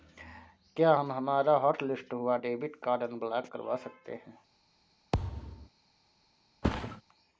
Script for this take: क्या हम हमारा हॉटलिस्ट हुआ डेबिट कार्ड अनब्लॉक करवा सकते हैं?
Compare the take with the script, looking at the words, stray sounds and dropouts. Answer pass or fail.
fail